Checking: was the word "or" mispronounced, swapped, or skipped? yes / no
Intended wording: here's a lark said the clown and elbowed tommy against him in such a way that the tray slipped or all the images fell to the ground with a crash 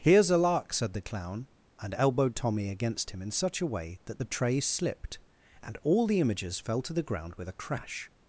yes